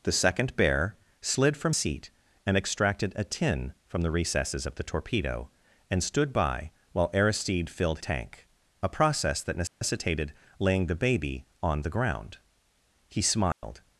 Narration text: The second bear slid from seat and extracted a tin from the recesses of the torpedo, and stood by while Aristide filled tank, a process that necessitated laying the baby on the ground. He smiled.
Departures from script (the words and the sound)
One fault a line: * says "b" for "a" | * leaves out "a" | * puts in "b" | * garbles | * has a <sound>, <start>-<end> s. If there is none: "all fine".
* has a dropout, 9.7-9.8 s
* has a dropout, 13.5-13.6 s